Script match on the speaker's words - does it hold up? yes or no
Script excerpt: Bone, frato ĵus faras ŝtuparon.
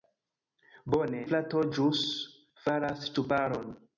yes